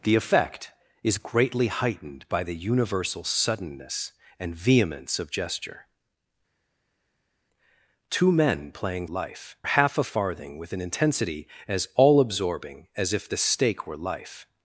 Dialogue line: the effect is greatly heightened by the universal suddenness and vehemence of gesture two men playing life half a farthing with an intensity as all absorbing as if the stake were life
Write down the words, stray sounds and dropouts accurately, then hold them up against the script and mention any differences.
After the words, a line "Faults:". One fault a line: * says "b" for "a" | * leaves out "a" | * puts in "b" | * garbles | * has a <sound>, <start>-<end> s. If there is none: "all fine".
the effect is greatly heightened by the universal suddenness and vehemence of gesture two men playing life half a farthing with an intensity as all absorbing as if the stake were life
Faults:
all fine